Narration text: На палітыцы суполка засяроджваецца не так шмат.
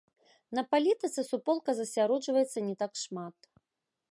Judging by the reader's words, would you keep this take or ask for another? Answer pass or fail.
pass